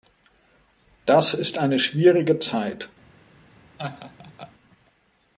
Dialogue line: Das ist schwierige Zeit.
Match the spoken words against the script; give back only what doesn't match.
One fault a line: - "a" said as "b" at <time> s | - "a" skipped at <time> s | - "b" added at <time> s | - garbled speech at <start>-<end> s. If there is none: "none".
- "eine" added at 1.6 s